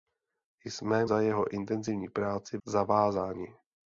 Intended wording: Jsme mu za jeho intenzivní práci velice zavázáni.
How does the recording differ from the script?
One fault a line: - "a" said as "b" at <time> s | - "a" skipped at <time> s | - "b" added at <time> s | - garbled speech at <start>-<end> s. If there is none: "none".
- "mu" skipped at 1.1 s
- "velice" skipped at 2.6 s